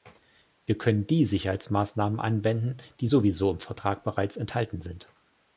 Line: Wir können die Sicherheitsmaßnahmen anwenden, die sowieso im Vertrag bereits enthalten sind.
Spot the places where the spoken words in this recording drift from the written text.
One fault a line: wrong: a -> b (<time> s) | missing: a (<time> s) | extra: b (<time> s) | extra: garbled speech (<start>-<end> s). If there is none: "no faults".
no faults